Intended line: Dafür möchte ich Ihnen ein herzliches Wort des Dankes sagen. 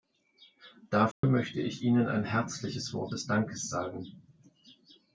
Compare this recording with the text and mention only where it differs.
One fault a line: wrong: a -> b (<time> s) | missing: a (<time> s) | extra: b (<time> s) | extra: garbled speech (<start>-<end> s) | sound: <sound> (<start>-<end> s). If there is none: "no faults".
sound: dropout (1.1-1.2 s)